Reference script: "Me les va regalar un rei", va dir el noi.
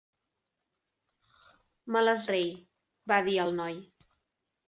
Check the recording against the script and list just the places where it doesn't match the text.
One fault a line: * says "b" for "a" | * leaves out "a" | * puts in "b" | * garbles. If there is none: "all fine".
* leaves out "va regalar un"